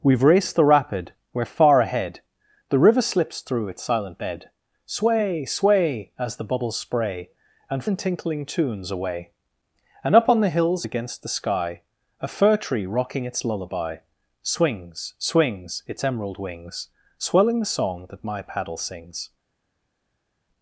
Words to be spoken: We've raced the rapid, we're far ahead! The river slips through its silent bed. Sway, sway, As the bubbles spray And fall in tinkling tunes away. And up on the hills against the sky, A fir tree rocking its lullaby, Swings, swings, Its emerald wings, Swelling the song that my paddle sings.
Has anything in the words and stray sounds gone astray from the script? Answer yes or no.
yes